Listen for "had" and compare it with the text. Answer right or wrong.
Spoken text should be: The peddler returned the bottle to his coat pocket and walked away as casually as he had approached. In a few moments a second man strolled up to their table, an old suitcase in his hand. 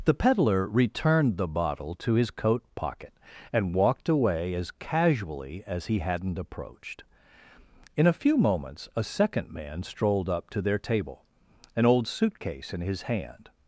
wrong